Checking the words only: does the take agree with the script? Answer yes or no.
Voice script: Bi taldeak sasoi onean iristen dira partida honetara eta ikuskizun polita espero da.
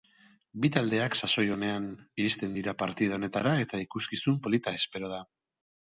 yes